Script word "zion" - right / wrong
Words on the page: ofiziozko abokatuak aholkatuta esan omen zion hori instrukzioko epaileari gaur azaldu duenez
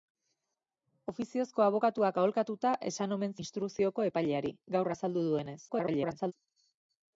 wrong